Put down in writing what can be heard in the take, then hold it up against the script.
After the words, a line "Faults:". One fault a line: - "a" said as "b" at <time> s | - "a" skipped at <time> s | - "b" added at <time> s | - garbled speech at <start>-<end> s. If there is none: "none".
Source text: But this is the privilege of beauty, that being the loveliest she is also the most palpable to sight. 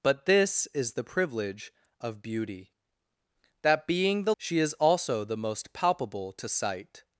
But this is the privilege of beauty, that being the she is also the most palpable to sight.
Faults:
- "loveliest" skipped at 4.3 s